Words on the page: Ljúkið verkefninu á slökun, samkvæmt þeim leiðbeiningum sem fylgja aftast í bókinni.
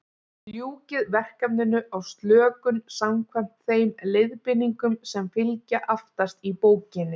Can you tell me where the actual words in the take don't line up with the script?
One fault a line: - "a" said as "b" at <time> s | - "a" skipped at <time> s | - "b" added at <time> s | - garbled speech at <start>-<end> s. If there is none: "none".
none